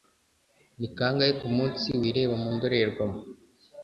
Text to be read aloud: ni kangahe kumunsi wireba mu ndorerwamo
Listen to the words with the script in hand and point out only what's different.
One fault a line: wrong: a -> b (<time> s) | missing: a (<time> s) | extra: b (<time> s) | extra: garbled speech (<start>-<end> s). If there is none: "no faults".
no faults